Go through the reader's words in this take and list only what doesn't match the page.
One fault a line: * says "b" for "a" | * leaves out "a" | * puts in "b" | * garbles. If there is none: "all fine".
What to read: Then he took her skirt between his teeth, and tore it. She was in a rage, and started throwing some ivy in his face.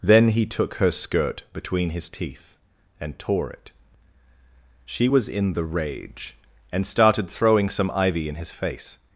* says "the" for "a"